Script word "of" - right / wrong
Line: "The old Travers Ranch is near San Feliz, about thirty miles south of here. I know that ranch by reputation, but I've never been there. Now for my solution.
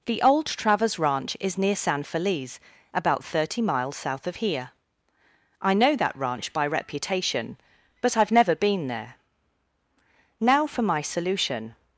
right